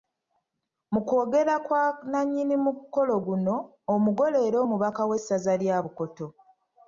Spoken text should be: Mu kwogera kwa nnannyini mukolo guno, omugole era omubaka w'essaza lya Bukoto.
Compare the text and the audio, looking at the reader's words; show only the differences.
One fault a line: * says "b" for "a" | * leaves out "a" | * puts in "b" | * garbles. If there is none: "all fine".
all fine